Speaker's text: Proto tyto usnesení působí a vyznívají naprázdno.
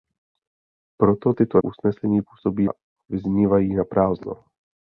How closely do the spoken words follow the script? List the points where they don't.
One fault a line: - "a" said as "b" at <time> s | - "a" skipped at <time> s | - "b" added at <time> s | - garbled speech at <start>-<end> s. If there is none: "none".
none